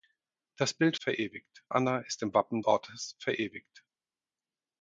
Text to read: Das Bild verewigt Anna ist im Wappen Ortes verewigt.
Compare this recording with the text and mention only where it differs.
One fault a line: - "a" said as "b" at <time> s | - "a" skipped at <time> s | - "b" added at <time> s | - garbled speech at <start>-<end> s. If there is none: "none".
none